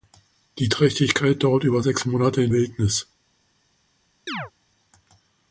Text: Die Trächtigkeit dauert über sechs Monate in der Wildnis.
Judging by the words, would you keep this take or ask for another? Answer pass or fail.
fail